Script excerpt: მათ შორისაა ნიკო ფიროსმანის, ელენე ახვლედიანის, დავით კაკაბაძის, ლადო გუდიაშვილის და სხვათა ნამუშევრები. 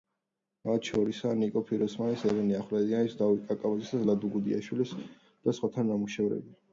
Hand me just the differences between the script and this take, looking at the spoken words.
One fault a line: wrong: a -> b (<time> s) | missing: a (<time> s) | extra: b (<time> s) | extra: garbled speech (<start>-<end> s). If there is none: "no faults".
no faults